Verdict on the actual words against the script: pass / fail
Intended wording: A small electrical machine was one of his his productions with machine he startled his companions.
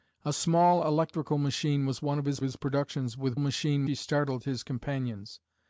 pass